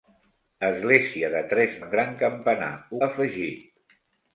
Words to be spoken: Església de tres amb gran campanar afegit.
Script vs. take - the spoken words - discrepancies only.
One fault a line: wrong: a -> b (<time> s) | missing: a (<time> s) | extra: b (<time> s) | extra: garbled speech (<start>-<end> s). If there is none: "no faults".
no faults